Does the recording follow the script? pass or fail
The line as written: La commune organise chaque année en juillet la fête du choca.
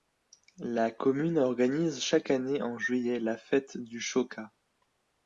pass